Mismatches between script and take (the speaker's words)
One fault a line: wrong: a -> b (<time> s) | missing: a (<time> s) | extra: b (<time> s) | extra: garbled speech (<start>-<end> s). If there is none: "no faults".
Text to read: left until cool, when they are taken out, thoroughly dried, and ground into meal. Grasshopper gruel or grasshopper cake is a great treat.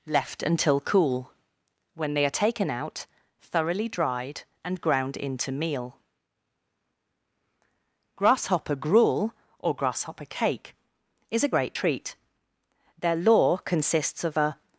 extra: Their lore consists of a (13.0 s)